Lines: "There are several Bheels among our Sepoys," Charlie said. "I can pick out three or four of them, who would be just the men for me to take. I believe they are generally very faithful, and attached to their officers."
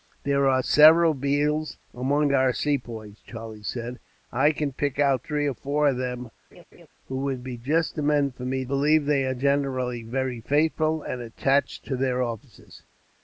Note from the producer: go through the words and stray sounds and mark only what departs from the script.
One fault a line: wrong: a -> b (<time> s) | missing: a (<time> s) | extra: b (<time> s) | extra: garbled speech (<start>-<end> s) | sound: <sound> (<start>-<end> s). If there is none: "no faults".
sound: laugh (6.5-6.9 s)
missing: to take I (8.6 s)